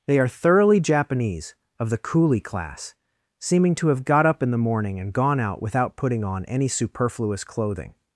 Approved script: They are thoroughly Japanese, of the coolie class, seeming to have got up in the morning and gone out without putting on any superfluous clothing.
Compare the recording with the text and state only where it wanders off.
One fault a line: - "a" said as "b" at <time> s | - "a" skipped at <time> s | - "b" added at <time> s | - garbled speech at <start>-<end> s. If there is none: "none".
none